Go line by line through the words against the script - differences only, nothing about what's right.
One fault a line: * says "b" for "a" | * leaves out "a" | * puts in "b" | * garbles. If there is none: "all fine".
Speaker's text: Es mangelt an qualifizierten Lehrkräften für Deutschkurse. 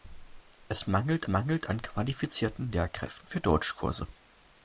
* puts in "mangelt"